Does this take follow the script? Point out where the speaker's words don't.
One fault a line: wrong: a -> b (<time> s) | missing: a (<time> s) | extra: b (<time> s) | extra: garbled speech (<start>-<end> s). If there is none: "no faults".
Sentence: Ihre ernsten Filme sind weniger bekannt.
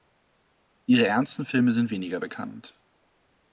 no faults